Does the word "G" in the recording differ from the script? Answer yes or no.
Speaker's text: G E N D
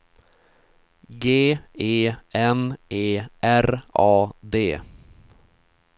no